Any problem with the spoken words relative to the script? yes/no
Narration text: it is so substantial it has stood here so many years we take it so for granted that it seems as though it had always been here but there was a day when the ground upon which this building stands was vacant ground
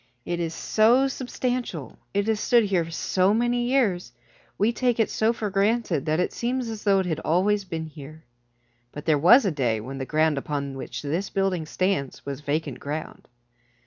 no